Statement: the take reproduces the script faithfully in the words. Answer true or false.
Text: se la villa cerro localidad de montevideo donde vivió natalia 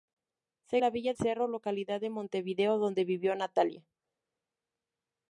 true